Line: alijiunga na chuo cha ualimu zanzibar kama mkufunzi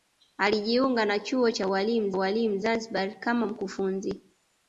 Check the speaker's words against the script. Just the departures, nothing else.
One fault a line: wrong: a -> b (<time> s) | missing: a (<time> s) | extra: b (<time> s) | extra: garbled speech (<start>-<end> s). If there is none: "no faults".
extra: ualimu (2.1 s)